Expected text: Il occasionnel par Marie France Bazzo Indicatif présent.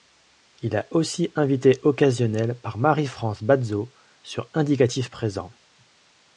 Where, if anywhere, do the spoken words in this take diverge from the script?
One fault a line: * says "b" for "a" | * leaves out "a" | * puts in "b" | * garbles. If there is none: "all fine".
* puts in "a aussi invité"
* puts in "sur"